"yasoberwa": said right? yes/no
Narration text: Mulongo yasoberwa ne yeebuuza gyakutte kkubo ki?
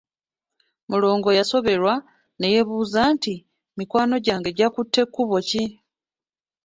yes